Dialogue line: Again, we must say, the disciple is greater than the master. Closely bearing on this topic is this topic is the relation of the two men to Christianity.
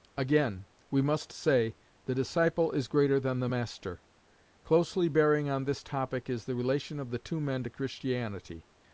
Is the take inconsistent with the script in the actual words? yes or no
yes